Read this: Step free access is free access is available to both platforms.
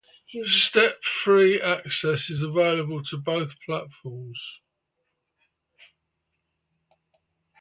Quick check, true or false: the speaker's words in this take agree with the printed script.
false